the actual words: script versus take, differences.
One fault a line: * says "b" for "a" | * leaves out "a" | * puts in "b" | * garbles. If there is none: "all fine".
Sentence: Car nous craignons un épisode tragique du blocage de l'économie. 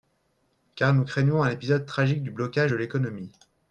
all fine